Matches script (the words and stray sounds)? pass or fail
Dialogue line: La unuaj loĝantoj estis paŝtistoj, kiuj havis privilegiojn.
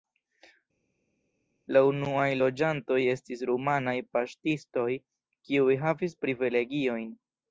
fail